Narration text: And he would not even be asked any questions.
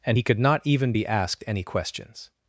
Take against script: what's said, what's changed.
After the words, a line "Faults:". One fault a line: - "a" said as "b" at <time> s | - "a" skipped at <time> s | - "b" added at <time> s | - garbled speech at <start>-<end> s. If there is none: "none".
And he could not even be asked any questions.
Faults:
- "would" said as "could" at 0.2 s